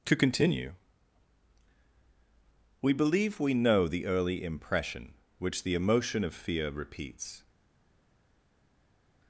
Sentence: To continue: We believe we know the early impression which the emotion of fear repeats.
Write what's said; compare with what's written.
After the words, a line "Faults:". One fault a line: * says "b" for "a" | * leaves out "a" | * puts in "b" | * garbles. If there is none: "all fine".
To continue: We believe we know the early impression which the emotion of fear repeats.
Faults:
all fine